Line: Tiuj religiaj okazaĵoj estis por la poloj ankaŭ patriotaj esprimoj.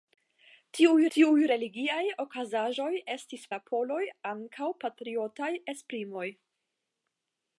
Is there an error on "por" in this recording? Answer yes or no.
yes